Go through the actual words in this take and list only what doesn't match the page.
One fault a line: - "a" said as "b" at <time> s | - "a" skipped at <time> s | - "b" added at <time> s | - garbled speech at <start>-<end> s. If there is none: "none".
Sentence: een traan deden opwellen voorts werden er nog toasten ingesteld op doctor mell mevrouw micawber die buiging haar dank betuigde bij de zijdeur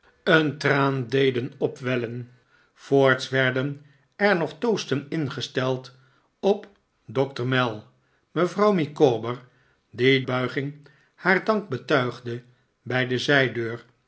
none